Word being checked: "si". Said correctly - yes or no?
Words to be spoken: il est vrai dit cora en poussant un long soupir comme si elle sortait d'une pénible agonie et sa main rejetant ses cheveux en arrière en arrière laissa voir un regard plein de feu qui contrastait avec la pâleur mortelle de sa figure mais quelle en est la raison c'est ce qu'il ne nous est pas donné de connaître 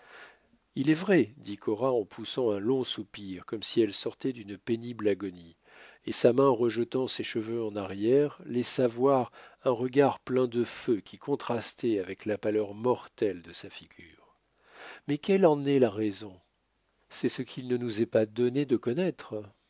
yes